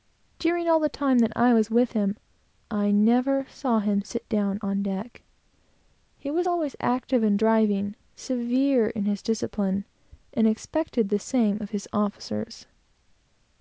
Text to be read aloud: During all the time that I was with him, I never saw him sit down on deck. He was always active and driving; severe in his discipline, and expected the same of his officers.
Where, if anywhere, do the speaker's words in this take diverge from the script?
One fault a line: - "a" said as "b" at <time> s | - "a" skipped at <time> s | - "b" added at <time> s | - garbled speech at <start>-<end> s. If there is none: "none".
none